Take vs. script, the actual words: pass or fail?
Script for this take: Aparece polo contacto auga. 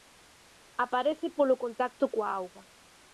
fail